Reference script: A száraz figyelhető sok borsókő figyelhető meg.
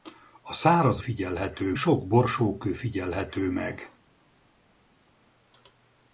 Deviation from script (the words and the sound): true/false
false